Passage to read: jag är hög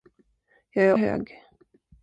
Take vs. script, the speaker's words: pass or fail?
pass